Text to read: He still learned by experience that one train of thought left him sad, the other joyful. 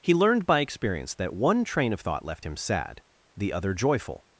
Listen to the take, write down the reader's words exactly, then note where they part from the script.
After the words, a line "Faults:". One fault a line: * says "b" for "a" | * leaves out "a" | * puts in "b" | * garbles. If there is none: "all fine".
He learned by experience that one train of thought left him sad, the other joyful.
Faults:
* leaves out "still"